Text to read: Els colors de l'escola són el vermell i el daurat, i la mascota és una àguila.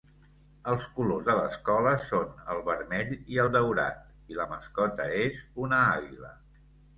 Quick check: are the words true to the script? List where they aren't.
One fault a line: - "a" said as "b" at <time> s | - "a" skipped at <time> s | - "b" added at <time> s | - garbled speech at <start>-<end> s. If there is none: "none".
none